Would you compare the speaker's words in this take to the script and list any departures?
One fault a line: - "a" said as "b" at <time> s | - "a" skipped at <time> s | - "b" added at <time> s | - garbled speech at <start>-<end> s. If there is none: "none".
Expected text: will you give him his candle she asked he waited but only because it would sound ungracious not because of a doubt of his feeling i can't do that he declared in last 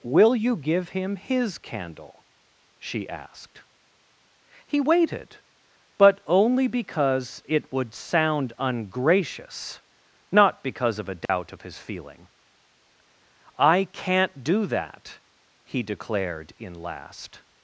none